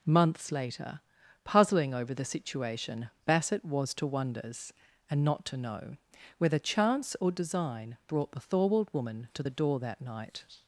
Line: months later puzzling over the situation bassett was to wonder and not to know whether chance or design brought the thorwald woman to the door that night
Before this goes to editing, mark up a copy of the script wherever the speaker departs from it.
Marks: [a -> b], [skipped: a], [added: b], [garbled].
months later puzzling over the situation bassett was to [wonder -> wonders] and not to know whether chance or design brought the thorwald woman to the door that night